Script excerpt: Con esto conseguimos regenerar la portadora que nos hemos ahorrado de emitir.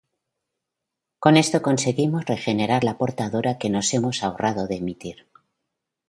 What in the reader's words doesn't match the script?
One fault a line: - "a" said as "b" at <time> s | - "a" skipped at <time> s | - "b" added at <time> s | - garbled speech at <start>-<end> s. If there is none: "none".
none